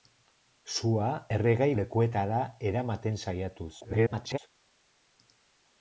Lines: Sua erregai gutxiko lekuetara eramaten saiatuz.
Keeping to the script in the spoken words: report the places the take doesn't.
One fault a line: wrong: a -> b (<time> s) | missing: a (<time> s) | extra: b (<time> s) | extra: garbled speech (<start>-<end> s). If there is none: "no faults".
missing: gutxiko (1.7 s)
extra: garbled speech (3.8-4.4 s)